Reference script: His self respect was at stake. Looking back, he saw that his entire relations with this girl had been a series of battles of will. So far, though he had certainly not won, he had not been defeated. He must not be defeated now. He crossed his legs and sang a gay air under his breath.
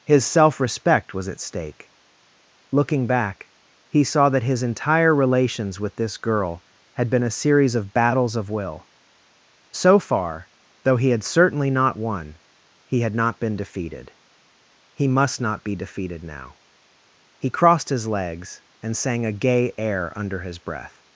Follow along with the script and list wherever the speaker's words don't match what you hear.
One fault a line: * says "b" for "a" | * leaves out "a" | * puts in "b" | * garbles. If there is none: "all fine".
all fine